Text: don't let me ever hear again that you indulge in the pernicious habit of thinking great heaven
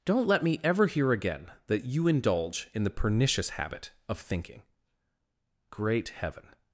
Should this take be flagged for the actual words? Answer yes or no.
no